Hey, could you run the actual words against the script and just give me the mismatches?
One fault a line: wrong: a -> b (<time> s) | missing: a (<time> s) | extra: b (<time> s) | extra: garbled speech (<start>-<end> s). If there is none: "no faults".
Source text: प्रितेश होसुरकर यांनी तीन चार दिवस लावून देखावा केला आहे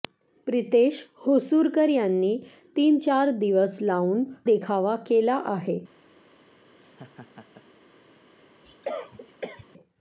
no faults